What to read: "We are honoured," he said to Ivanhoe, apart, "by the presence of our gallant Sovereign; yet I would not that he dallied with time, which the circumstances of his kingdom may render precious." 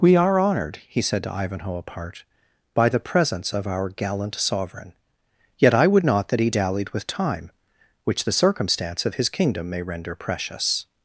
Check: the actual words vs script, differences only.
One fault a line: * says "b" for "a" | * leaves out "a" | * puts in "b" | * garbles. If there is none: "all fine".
* says "circumstance" for "circumstances"